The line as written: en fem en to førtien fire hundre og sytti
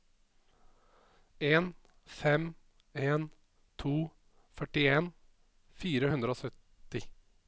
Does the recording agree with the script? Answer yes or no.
yes